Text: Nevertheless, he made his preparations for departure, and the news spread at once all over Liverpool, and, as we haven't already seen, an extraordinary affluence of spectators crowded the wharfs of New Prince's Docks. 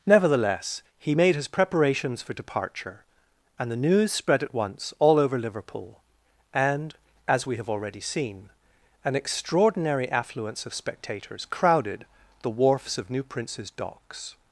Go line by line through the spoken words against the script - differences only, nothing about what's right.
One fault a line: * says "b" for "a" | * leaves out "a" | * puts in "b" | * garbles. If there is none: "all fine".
* says "have" for "haven't"